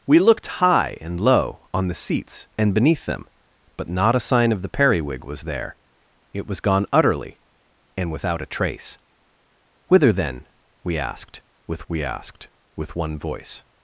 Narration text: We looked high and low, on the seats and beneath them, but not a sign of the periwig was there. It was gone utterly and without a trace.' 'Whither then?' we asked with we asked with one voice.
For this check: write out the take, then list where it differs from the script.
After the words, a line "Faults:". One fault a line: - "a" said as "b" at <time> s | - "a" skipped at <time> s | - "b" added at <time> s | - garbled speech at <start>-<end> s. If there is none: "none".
We looked high and low, on the seats and beneath them, but not a sign of the periwig was there. It was gone utterly and without a trace.' 'Whither then?' we asked with we asked with one voice.
Faults:
none